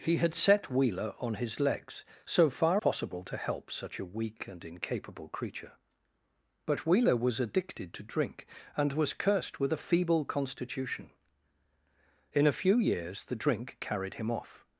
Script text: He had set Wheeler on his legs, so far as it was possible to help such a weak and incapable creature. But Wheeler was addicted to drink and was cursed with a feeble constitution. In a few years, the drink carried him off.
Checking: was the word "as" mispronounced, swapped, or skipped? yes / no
yes